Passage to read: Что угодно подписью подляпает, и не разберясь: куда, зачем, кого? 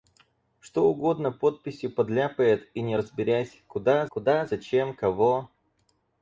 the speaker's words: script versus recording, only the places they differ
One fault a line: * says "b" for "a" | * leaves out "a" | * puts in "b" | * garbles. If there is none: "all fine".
* puts in "куда"